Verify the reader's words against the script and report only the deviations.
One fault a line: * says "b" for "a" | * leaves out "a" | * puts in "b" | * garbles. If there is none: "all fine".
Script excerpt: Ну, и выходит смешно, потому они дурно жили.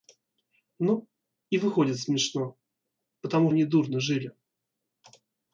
all fine